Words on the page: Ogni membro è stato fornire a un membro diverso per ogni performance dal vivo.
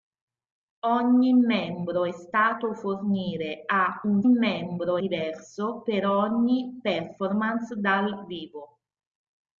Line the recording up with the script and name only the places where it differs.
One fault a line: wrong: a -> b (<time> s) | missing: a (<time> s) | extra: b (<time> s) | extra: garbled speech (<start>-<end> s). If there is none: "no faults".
no faults